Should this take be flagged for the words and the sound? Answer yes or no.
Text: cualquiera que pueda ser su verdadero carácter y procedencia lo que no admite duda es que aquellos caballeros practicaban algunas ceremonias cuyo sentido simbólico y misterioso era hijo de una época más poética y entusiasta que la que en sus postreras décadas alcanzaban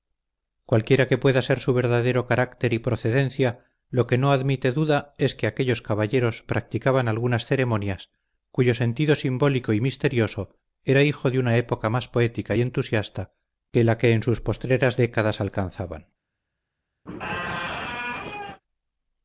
yes